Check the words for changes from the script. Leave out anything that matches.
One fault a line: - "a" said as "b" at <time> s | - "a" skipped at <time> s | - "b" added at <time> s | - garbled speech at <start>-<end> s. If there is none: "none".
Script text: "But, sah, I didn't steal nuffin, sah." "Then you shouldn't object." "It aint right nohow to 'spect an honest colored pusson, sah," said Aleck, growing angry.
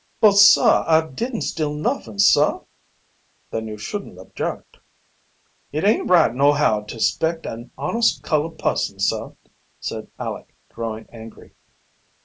none